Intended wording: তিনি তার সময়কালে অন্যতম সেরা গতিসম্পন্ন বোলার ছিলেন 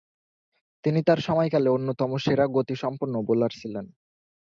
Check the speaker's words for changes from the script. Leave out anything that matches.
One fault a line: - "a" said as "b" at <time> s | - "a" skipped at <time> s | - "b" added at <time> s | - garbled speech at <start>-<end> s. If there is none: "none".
none